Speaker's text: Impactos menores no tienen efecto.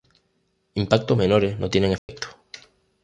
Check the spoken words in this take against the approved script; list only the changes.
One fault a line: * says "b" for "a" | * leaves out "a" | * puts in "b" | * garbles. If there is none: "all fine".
all fine